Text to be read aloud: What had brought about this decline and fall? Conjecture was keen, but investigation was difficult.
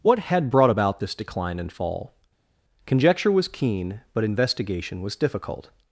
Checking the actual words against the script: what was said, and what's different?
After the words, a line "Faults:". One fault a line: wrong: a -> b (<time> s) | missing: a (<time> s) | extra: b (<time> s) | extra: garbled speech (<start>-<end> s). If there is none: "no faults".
What had brought about this decline and fall? Conjecture was keen, but investigation was difficult.
Faults:
no faults